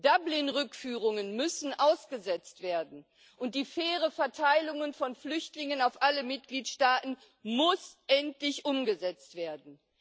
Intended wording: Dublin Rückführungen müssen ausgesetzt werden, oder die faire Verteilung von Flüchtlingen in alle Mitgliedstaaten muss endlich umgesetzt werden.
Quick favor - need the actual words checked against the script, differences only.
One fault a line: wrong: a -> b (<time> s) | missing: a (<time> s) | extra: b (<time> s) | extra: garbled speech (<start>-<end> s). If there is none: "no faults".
wrong: oder -> und (3.4 s)
wrong: in -> auf (5.8 s)